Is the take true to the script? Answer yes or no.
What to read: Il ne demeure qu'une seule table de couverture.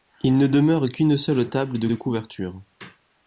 no